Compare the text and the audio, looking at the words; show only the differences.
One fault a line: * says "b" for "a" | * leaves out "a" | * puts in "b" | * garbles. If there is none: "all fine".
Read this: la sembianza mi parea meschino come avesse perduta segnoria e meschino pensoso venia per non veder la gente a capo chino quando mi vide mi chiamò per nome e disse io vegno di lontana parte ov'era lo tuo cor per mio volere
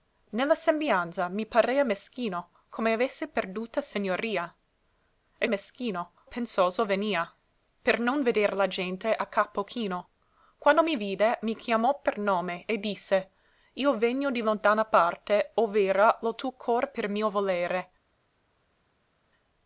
all fine